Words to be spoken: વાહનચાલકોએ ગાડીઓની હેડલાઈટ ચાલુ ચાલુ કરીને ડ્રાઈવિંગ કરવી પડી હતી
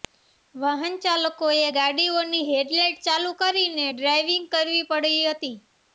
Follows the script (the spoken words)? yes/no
no